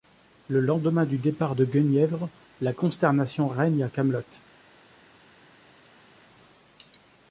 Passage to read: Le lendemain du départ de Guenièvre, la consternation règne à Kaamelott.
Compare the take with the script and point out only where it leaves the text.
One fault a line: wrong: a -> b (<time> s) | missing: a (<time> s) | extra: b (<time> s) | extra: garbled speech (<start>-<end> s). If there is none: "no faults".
no faults